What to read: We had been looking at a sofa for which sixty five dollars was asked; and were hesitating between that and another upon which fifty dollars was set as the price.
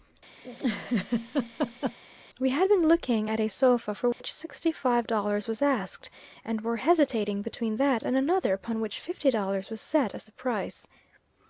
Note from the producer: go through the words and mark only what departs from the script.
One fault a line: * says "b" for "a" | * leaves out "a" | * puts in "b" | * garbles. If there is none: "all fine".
all fine